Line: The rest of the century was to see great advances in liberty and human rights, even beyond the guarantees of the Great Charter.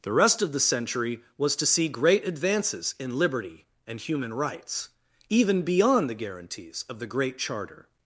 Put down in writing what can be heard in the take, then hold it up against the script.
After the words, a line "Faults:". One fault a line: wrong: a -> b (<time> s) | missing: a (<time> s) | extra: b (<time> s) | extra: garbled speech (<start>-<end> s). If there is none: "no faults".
The rest of the century was to see great advances in liberty and human rights, even beyond the guarantees of the Great Charter.
Faults:
no faults